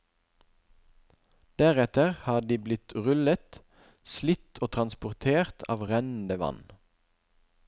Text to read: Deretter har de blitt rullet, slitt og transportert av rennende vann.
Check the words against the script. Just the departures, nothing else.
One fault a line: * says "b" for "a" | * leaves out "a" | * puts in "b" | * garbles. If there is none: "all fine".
all fine